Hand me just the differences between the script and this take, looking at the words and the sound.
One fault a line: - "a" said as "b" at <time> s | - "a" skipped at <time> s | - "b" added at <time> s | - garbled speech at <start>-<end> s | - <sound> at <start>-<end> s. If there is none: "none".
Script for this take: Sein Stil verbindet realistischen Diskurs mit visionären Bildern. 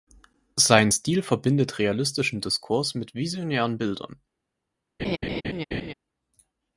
- laugh at 5.0-5.9 s